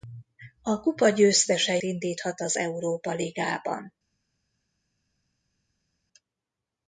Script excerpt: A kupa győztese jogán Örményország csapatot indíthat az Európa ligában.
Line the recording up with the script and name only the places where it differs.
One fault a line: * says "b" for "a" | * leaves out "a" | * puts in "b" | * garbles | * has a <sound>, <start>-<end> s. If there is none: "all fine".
* leaves out "jogán Örményország csapatot"